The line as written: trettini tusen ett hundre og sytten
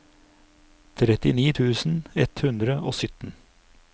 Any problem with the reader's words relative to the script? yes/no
no